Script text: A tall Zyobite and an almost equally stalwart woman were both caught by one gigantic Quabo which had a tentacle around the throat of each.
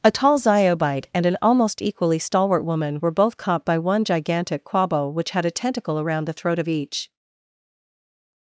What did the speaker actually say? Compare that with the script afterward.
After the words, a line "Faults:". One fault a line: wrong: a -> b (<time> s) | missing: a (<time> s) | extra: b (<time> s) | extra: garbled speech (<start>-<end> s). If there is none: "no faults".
A tall Zyobite and an almost equally stalwart woman were both caught by one gigantic Quabo which had a tentacle around the throat of each.
Faults:
no faults